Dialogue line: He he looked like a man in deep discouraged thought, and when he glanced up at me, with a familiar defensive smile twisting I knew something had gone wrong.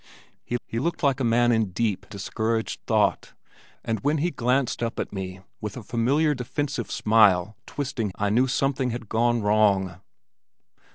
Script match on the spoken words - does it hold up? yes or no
yes